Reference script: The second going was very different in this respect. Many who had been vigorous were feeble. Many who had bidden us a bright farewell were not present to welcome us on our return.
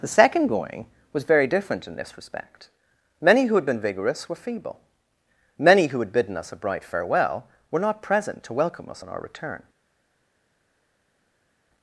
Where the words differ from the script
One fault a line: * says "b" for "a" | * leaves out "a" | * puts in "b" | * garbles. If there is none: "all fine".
all fine